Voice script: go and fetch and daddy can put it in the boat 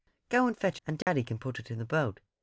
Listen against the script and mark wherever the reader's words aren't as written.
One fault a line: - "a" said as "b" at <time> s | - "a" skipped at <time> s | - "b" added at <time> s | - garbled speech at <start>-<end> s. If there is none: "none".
none